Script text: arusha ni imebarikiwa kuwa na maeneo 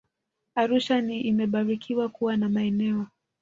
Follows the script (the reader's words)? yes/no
yes